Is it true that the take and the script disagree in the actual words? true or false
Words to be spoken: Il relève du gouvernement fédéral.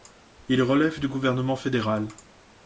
false